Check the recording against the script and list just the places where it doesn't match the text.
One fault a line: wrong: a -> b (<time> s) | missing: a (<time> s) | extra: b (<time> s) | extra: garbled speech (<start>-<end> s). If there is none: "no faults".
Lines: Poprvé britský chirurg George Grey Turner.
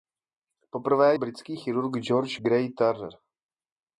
no faults